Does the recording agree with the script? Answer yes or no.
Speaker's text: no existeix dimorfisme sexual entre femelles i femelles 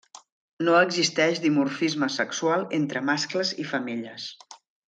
no